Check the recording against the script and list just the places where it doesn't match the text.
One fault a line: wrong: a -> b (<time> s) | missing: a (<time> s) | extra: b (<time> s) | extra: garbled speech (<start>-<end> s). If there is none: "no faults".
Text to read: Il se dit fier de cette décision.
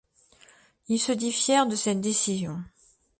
no faults